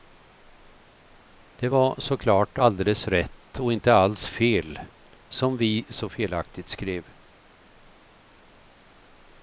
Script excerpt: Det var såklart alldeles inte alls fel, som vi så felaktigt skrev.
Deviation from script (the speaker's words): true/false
true